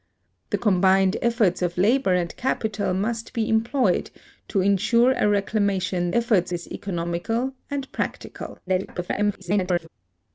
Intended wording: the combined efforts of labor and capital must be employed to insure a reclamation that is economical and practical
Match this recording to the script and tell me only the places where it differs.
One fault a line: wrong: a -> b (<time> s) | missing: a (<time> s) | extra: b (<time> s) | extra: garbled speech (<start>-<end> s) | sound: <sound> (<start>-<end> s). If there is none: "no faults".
wrong: that -> efforts (6.1 s)
extra: garbled speech (8.7-9.9 s)